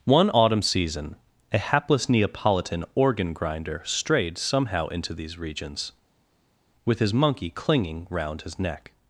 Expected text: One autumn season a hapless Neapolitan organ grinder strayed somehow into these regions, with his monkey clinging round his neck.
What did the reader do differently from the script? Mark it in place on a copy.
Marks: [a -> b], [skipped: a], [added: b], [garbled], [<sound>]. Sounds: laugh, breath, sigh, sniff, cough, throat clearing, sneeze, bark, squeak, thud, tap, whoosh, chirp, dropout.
One autumn season a hapless Neapolitan organ grinder strayed somehow into these regions, with his monkey clinging round his neck.